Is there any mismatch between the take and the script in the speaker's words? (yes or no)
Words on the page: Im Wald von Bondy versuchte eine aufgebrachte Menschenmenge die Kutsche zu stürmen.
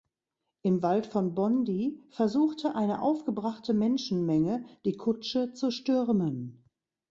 no